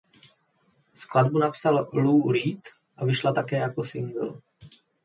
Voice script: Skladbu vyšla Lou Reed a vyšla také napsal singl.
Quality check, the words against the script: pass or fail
fail